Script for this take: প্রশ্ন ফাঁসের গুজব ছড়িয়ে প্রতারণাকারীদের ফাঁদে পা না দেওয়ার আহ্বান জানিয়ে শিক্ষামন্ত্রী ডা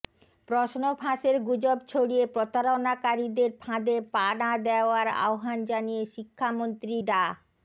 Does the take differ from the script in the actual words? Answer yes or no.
no